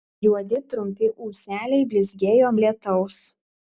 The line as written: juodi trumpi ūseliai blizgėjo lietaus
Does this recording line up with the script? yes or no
yes